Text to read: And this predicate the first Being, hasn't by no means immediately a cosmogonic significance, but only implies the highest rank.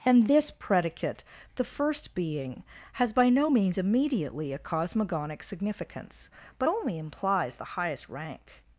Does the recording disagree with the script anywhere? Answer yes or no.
yes